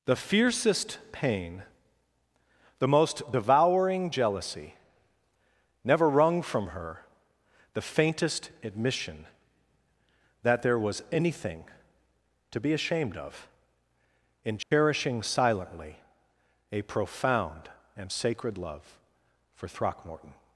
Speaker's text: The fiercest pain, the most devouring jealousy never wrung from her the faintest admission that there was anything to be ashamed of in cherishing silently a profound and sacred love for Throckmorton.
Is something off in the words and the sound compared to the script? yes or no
yes